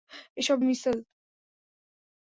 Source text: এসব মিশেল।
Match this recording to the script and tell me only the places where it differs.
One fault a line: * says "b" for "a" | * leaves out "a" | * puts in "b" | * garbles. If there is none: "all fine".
all fine